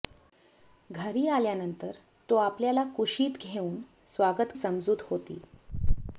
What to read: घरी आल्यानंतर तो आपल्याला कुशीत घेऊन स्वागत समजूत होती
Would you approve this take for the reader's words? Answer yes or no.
yes